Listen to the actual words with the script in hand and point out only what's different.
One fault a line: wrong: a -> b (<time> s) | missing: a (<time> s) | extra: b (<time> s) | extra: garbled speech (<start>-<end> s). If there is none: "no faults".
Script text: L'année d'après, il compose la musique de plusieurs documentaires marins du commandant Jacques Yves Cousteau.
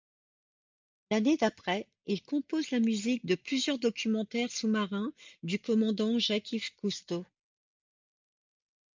extra: sous (4.5 s)